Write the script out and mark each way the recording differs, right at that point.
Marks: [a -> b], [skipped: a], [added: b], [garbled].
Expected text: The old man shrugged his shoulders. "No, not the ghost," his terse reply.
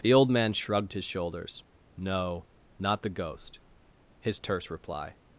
The old man shrugged his shoulders. "No, not the ghost," his terse reply.